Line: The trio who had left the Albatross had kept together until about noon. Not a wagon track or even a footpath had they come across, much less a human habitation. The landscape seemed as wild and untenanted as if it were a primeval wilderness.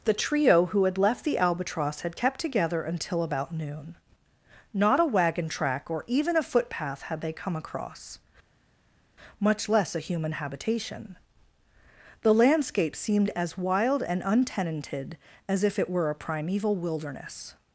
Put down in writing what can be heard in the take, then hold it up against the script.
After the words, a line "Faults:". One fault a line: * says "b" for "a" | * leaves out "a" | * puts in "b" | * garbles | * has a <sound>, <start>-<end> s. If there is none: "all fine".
The trio who had left the Albatross had kept together until about noon. Not a wagon track or even a footpath had they come across, much less a human habitation. The landscape seemed as wild and untenanted as if it were a primeval wilderness.
Faults:
all fine